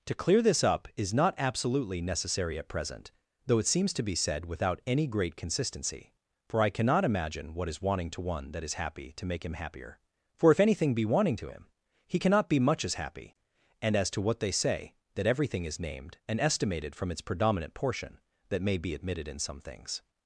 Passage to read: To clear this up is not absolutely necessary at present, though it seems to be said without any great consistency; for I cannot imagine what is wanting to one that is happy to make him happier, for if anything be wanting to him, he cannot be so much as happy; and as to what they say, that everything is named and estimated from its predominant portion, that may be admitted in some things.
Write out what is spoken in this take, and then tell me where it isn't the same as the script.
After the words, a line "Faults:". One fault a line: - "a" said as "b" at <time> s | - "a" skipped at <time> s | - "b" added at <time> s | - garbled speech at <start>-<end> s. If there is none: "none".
To clear this up is not absolutely necessary at present, though it seems to be said without any great consistency; for I cannot imagine what is wanting to one that is happy to make him happier, for if anything be wanting to him, he cannot be much as happy; and as to what they say, that everything is named and estimated from its predominant portion, that may be admitted in some things.
Faults:
- "so" skipped at 12.6 s